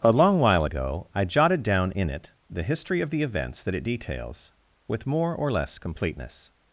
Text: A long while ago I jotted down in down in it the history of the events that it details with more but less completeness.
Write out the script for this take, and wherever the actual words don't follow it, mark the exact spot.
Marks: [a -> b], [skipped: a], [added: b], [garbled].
A long while ago I jotted down in [skipped: down in] it the history of the events that it details with more [but -> or] less completeness.